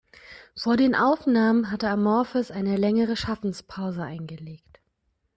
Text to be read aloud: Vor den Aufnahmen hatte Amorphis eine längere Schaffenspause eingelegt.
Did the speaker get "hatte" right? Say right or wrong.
right